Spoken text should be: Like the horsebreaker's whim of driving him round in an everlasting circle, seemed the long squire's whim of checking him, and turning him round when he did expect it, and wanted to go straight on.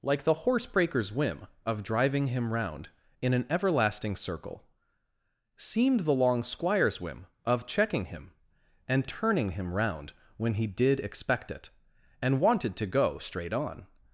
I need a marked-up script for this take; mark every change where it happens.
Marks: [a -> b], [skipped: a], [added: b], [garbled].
Like the horsebreaker's whim of driving him round in an everlasting circle, seemed the long squire's whim of checking him, and turning him round when he did expect it, and wanted to go straight on.